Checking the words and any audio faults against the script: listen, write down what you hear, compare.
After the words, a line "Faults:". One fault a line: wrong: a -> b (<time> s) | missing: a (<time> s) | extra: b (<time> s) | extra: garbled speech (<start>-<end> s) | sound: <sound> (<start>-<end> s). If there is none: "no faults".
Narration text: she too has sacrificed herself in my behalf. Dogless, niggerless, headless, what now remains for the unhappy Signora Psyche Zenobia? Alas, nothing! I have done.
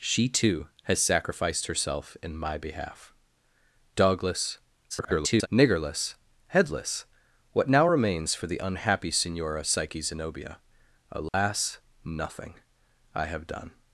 she too has sacrificed herself in my behalf. Dogless, [garbled] niggerless, headless, what now remains for the unhappy Signora Psyche Zenobia? Alas, nothing! I have done.
Faults:
extra: garbled speech (4.9-5.5 s)
sound: dropout (11.3-11.3 s)